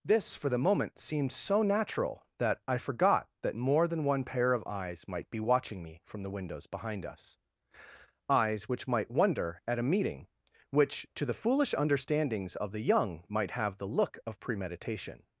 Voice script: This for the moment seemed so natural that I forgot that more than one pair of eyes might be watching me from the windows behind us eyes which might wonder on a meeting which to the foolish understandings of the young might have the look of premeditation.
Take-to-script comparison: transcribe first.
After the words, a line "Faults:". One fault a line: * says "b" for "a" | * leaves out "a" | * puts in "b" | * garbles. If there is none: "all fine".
This for the moment seemed so natural that I forgot that more than one pair of eyes might be watching me from the windows behind us eyes which might wonder at a meeting which to the foolish understandings of the young might have the look of premeditation.
Faults:
* says "at" for "on"